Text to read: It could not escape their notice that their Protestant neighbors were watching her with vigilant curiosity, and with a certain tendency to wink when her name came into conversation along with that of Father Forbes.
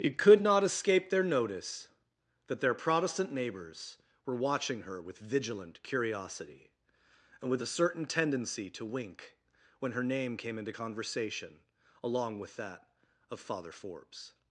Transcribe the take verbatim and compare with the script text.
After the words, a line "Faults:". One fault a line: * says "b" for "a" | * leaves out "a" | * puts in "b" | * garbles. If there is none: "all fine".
It could not escape their notice that their Protestant neighbors were watching her with vigilant curiosity, and with a certain tendency to wink when her name came into conversation along with that of Father Forbes.
Faults:
all fine